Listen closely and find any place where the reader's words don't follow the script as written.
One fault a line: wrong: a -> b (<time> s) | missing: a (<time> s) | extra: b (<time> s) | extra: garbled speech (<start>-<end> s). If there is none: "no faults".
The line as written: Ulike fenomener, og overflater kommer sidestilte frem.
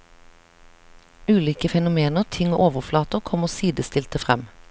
extra: ting (2.3 s)